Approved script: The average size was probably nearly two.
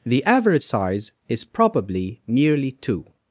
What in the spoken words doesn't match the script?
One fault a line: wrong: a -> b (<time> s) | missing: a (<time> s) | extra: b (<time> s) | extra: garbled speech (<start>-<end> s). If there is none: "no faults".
wrong: was -> is (1.3 s)